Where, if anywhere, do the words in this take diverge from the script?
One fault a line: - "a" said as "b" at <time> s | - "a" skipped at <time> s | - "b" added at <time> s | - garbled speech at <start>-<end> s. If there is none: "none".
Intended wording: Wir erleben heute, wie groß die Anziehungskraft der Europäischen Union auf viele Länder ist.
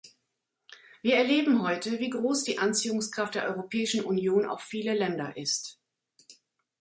none